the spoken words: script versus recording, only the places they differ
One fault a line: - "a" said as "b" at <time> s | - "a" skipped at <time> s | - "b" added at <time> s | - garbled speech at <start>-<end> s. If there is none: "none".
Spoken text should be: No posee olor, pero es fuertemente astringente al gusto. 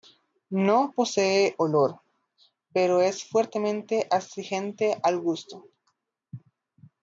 none